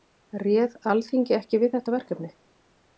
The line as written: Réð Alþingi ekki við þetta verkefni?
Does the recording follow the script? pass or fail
pass